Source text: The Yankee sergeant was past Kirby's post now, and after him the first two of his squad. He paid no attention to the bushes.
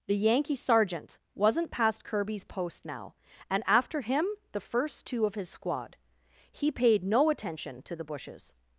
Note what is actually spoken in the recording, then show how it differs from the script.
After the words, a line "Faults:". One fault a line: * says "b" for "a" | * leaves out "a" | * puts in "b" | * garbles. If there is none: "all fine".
The Yankee sergeant wasn't past Kirby's post now, and after him the first two of his squad. He paid no attention to the bushes.
Faults:
* says "wasn't" for "was"